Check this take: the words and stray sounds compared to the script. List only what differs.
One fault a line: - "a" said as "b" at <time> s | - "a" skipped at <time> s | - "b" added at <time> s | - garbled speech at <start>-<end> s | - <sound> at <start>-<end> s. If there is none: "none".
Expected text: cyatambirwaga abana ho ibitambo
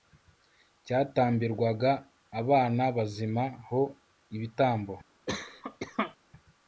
- "bazima" added at 3.0 s
- cough at 5.3-6.2 s